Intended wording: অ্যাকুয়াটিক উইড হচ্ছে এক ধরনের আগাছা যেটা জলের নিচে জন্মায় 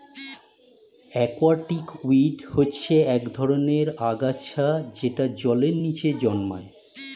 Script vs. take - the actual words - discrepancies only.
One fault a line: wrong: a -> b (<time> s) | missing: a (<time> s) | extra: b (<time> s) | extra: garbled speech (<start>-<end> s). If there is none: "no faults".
no faults